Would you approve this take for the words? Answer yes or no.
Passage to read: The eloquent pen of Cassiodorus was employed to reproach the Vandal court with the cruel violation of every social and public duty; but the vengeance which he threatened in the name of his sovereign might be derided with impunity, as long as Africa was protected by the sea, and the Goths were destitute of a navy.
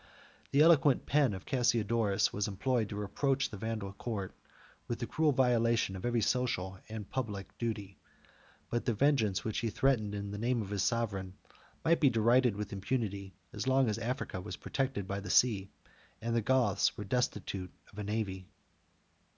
yes